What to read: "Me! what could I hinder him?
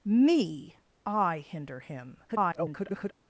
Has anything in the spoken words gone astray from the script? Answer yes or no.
yes